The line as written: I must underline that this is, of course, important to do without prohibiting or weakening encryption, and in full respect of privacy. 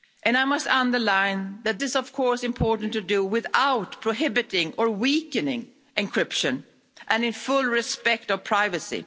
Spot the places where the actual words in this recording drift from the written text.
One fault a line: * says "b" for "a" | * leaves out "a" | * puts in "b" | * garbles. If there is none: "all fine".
* leaves out "this"